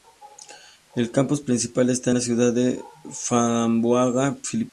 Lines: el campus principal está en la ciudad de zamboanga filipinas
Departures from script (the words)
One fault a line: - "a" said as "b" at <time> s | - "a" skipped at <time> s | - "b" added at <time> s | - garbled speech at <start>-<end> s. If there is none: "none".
none